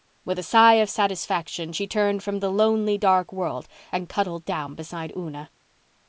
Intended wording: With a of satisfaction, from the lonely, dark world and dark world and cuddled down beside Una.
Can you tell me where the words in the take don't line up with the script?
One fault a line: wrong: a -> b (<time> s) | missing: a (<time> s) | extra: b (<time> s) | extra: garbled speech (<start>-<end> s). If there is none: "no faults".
extra: sigh (0.4 s)
extra: she turned (1.7 s)
missing: dark world and (4.1 s)